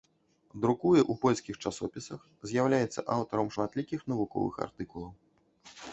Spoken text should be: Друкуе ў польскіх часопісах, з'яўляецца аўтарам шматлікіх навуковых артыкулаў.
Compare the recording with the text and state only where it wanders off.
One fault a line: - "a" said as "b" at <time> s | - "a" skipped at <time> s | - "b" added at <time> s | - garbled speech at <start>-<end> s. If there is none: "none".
none